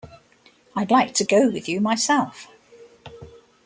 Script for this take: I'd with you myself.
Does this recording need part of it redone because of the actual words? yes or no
yes